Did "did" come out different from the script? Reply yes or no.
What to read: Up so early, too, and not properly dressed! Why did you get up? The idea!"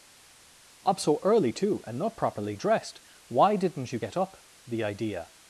yes